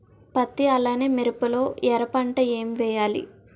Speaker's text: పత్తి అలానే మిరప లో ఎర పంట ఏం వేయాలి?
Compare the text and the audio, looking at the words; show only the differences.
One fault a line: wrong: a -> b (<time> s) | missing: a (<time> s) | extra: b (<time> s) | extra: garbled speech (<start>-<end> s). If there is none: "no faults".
no faults